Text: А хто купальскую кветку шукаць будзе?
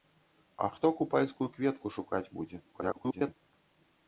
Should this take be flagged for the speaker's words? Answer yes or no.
yes